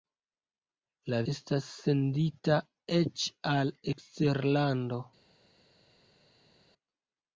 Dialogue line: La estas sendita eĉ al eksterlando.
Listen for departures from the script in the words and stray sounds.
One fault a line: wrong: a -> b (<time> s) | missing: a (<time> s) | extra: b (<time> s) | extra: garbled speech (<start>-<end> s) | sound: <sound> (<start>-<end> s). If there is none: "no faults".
no faults